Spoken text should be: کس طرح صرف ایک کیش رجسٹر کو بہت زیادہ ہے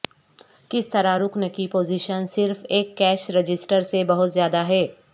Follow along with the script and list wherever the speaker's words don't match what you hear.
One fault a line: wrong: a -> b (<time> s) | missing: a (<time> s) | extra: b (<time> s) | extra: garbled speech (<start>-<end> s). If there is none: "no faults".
extra: رکن کی پوزیشن (1.2 s)
wrong: کو -> سے (3.8 s)